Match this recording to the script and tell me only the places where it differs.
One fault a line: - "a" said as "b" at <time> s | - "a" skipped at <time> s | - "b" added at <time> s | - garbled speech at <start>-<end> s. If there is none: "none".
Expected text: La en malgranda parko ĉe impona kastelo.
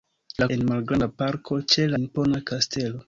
none